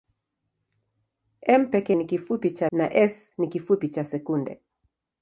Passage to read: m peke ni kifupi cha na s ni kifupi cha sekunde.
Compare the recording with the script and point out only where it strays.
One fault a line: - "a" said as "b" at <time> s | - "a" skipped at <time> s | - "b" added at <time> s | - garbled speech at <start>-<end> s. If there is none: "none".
none